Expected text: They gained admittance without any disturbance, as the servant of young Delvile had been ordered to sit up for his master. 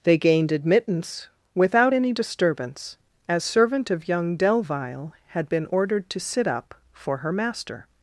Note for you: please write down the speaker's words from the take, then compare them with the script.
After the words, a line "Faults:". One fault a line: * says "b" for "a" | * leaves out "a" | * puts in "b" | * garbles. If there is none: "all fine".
They gained admittance without any disturbance, as servant of young Delvile had been ordered to sit up for her master.
Faults:
* leaves out "the"
* says "her" for "his"